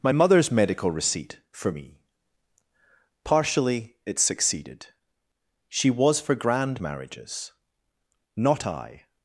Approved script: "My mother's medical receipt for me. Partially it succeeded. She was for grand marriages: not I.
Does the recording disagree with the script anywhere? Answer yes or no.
no